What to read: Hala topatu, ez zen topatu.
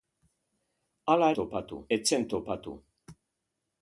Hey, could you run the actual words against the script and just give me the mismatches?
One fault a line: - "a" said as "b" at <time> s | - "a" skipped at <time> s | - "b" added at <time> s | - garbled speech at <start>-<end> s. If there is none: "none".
none